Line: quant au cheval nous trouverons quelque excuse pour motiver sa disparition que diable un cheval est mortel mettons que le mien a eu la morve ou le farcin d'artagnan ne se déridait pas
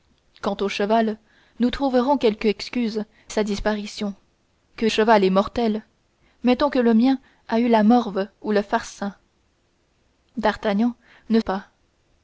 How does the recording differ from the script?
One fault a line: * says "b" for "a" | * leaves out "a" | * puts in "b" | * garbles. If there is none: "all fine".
* leaves out "pour motiver"
* leaves out "diable un"
* leaves out "se déridait"